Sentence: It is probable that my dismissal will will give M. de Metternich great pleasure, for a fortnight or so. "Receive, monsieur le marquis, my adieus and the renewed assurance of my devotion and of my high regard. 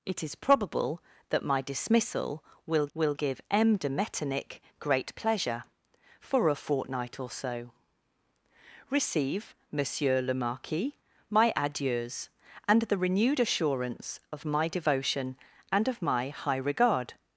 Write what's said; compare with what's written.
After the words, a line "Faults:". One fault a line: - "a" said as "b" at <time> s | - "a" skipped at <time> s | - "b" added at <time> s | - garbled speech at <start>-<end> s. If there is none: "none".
It is probable that my dismissal will will give M. de Metternich great pleasure, for a fortnight or so. "Receive, monsieur le marquis, my adieus and the renewed assurance of my devotion and of my high regard.
Faults:
none